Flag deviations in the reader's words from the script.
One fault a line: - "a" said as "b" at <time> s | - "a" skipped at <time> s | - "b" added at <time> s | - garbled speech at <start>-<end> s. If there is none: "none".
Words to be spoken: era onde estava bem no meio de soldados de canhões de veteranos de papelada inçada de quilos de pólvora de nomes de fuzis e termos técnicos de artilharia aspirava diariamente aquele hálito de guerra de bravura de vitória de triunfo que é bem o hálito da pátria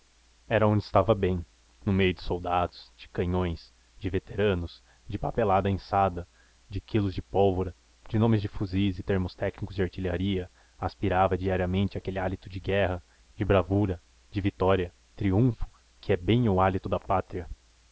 - "de" skipped at 14.9 s